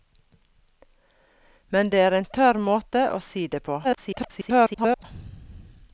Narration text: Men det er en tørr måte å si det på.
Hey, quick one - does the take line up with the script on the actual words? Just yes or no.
no